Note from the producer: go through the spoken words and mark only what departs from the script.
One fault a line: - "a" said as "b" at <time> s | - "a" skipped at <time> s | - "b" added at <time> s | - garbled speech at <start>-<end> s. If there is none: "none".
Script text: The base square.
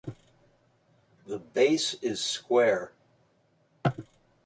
- "is" added at 2.0 s